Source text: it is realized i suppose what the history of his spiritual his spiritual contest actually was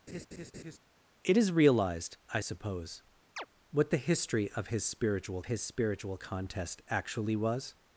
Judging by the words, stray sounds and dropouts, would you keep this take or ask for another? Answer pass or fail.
fail